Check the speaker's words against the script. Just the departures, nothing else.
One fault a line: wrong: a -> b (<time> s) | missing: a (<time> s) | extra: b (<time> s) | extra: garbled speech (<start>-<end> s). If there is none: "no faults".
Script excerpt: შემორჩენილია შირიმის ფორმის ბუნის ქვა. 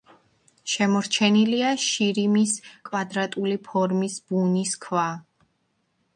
extra: კვადრატული (2.9 s)